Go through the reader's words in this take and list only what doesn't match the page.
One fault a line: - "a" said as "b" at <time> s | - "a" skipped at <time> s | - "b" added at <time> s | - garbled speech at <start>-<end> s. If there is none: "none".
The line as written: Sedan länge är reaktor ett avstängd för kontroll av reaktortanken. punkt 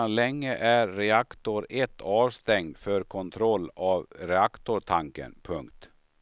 none